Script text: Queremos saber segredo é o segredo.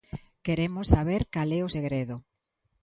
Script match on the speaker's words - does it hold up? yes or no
no